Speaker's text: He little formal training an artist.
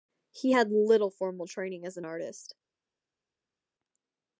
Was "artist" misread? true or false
false